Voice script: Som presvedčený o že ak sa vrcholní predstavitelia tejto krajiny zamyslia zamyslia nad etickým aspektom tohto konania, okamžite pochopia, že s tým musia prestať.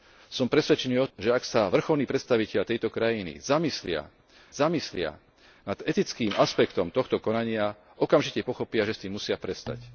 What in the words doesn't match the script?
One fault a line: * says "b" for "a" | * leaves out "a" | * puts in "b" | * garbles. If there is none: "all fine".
all fine